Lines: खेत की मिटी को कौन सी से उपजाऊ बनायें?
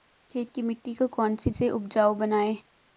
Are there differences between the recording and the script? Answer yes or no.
no